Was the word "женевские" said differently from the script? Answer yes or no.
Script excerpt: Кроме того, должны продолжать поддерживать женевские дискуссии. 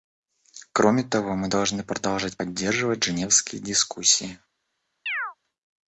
no